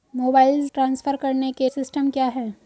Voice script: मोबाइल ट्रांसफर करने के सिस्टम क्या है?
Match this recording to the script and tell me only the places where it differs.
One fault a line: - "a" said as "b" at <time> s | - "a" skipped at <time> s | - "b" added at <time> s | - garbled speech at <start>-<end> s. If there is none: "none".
none